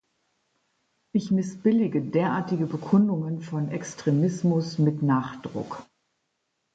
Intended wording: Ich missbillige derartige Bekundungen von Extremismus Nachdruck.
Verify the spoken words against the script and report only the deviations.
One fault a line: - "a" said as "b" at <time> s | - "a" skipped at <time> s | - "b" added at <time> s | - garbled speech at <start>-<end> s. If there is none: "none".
- "mit" added at 4.8 s